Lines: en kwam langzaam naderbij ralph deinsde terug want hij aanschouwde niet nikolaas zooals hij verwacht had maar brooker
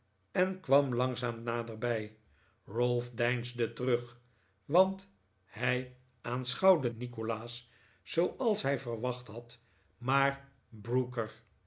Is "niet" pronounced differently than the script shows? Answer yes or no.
yes